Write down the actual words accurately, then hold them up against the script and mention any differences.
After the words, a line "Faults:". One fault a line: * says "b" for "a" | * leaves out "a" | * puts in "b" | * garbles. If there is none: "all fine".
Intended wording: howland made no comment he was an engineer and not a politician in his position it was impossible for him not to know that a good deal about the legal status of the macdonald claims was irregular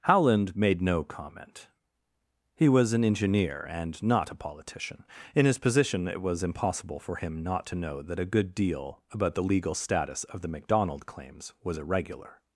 howland made no comment he was an engineer and not a politician in his position it was impossible for him not to know that a good deal about the legal status of the macdonald claims was irregular
Faults:
all fine